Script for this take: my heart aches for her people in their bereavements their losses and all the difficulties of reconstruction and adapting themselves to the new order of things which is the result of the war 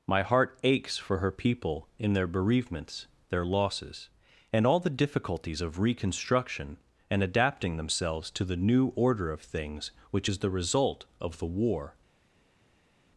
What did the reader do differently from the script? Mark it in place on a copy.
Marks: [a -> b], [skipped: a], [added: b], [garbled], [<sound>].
my heart aches for her people in their bereavements their losses and all the difficulties of reconstruction and adapting themselves to the new order of things which is the result of the war